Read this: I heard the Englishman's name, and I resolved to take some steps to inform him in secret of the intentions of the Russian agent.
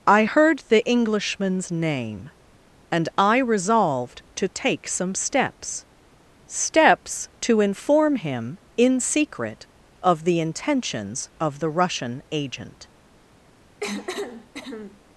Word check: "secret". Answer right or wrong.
right